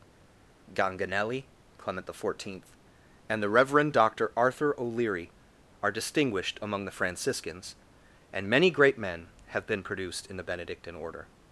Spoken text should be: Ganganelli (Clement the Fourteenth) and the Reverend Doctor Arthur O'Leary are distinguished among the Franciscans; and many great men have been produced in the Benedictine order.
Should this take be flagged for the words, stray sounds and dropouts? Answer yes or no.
no